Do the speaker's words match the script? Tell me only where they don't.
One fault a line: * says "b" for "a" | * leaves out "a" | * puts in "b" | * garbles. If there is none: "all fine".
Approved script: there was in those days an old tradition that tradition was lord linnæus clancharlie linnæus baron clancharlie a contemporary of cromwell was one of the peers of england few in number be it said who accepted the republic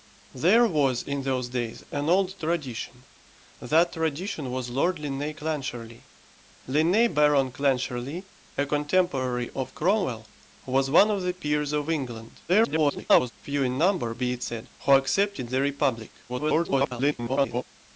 * garbles
* garbles